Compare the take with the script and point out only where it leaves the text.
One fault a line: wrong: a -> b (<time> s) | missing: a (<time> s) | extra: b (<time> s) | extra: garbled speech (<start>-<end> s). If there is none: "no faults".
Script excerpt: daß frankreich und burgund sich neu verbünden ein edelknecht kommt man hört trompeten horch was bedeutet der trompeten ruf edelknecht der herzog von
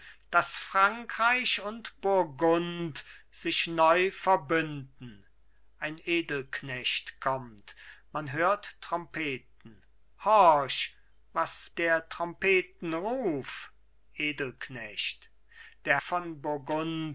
missing: bedeutet (11.7 s)
missing: herzog (16.0 s)